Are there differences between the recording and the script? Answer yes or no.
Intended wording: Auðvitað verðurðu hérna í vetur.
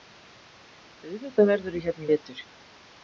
no